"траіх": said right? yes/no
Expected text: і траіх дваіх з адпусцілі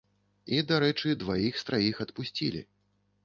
no